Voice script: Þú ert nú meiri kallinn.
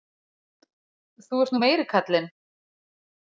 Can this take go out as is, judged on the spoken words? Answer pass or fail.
pass